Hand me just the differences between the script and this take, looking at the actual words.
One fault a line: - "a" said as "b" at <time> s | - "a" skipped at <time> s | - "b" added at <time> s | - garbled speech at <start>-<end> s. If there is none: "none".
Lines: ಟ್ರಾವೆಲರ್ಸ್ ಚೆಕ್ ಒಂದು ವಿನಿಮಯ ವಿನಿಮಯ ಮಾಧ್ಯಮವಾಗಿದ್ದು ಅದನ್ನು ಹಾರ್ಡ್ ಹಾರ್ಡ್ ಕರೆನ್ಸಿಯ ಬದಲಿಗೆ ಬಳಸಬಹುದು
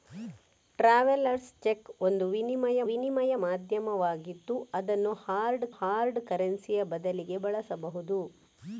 none